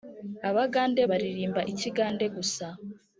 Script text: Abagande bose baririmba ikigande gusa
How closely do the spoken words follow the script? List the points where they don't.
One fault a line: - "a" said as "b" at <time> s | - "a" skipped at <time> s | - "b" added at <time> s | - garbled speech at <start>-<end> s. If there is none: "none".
- "bose" skipped at 1.0 s